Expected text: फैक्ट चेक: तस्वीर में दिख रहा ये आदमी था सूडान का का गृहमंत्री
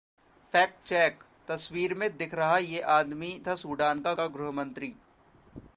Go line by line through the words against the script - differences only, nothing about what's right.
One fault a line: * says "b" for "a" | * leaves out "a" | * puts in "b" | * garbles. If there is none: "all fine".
all fine